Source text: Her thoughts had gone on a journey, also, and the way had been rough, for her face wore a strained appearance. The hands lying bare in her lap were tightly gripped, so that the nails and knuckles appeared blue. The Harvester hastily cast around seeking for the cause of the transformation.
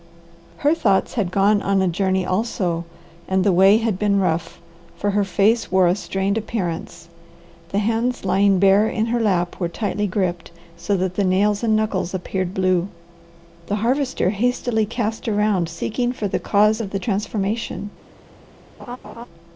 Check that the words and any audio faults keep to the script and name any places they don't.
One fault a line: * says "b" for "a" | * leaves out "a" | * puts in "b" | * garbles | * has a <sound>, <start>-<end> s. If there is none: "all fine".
* has a laugh, 18.8-19.3 s